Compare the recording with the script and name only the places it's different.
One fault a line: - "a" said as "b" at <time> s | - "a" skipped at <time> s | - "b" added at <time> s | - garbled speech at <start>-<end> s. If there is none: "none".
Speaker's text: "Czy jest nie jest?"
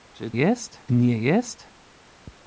none